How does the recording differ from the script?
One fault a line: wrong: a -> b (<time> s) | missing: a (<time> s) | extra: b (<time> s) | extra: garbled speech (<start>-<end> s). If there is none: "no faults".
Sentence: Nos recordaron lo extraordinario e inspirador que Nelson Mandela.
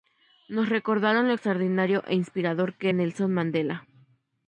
no faults